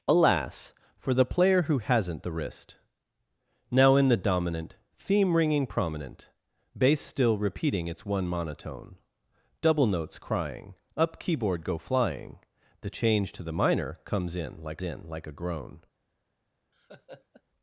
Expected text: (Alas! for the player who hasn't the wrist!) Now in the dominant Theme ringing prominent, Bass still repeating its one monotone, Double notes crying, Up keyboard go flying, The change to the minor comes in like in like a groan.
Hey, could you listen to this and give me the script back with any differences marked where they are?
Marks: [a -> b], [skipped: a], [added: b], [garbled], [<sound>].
(Alas! for the player who hasn't the wrist!) Now in the dominant Theme ringing prominent, Bass still repeating its one monotone, Double notes crying, Up keyboard go flying, The change to the minor comes in like in like a groan. [laugh]